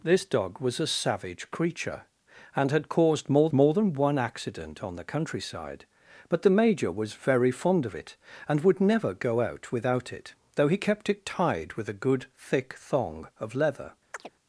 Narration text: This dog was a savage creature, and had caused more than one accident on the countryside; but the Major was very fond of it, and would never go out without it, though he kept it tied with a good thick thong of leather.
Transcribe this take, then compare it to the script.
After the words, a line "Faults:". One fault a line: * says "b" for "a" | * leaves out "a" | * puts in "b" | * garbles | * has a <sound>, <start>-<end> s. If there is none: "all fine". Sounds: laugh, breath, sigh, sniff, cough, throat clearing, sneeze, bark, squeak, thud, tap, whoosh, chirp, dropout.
This dog was a savage creature, and had caused more more than one accident on the countryside; but the Major was very fond of it, and would never go out without it, though he kept it tied with a good thick thong of leather.
Faults:
* puts in "more"
* has a chirp, 14.1-14.3 s